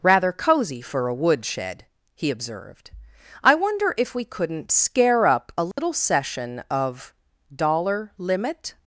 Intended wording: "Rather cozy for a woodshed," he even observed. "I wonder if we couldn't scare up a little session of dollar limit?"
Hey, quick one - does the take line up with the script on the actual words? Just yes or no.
no